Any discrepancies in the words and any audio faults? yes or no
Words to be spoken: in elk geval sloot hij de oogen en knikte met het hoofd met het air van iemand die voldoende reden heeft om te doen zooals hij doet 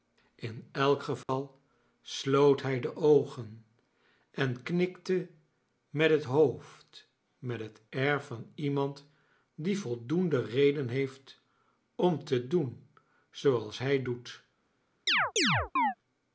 yes